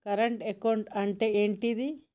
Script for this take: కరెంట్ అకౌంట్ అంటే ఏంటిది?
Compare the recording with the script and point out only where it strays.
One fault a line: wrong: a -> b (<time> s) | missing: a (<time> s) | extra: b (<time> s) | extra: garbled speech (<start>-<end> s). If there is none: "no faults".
no faults